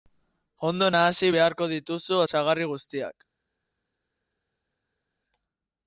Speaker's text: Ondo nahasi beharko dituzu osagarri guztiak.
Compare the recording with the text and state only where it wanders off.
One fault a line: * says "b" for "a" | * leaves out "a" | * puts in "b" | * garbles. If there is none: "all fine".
all fine